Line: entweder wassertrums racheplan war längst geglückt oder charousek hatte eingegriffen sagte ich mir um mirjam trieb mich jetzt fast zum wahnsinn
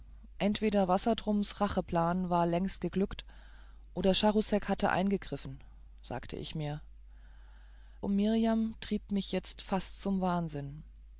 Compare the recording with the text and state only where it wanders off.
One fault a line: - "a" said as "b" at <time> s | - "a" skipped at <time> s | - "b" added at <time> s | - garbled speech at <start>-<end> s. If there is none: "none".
none